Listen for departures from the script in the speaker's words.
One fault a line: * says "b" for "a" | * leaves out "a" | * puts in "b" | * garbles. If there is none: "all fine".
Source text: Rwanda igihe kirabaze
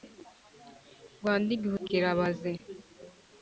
all fine